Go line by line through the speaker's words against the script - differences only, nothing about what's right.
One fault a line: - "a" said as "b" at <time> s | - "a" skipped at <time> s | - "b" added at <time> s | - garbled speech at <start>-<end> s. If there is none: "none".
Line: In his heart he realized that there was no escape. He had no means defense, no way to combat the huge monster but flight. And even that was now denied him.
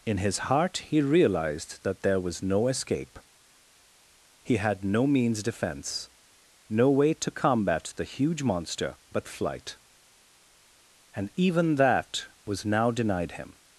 none